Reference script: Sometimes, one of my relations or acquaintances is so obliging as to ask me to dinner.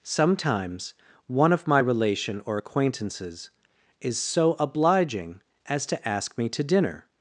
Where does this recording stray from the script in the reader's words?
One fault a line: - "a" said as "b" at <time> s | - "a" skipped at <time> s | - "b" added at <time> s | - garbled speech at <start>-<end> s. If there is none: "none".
- "relations" said as "relation" at 1.8 s